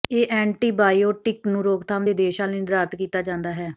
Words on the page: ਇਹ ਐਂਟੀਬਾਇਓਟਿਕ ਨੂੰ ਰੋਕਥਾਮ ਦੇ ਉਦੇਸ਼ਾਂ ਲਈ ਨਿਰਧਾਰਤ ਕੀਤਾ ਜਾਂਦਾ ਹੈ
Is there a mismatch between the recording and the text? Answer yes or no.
no